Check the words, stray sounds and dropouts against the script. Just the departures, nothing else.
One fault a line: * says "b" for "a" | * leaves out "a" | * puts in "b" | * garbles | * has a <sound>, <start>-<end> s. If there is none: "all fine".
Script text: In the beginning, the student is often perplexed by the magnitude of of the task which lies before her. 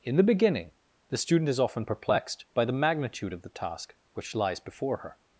* leaves out "of"